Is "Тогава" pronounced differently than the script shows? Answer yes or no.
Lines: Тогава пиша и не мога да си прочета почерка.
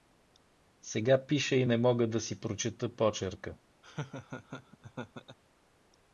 yes